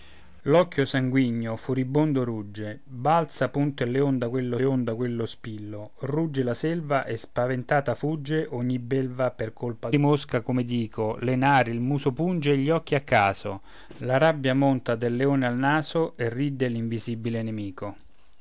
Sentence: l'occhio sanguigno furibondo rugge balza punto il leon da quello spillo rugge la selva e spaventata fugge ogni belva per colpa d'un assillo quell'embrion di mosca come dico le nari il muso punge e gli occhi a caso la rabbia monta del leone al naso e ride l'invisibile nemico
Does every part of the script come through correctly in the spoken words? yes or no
no